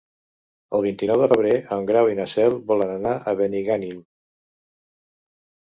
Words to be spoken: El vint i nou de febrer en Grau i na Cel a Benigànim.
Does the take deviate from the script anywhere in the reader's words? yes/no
yes